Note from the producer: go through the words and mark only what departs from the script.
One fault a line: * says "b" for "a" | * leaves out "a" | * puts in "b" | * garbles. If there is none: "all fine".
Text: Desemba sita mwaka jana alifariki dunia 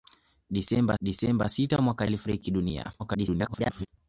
* puts in "desemba"
* leaves out "jana"
* garbles